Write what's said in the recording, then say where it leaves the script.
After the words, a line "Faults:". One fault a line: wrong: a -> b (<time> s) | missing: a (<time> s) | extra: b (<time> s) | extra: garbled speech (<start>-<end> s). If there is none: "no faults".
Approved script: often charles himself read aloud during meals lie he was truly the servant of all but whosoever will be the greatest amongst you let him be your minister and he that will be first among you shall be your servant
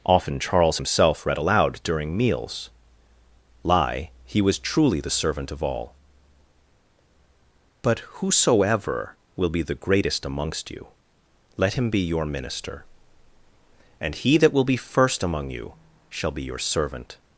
often charles himself read aloud during meals lie he was truly the servant of all but whosoever will be the greatest amongst you let him be your minister and he that will be first among you shall be your servant
Faults:
no faults